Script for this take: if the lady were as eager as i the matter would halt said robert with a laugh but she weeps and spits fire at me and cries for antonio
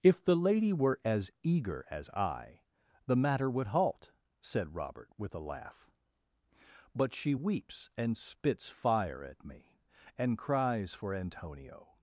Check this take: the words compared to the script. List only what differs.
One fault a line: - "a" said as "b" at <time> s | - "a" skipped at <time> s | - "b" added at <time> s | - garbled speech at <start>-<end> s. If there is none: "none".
none